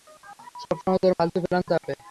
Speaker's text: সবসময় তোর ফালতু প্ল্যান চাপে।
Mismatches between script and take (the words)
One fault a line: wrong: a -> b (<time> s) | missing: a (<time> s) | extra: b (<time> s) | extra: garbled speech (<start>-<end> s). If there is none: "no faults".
no faults